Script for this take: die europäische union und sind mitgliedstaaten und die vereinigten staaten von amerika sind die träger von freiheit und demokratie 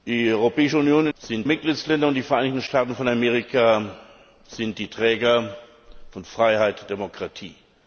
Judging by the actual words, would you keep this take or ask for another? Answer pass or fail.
pass